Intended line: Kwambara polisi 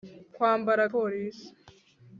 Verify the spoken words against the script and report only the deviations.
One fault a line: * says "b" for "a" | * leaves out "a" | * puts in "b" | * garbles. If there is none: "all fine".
all fine